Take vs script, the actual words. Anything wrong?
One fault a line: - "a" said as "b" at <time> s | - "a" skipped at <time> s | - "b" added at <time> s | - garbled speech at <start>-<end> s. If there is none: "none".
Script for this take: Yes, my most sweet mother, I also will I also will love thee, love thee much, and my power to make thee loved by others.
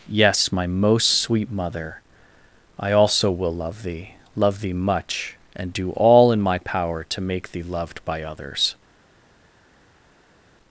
- "I also will" skipped at 3.5 s
- "do all in" added at 5.7 s